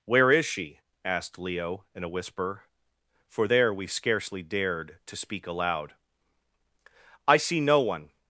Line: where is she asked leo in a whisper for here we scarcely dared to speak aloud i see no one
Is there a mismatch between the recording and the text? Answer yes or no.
yes